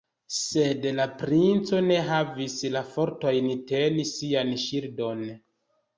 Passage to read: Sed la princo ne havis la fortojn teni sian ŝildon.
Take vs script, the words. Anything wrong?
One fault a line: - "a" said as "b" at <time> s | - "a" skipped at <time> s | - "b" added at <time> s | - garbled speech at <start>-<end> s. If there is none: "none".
none